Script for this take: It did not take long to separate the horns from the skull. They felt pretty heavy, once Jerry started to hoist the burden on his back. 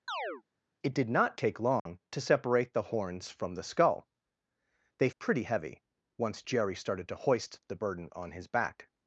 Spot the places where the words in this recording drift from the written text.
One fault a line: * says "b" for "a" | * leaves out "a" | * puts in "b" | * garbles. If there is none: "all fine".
* leaves out "felt"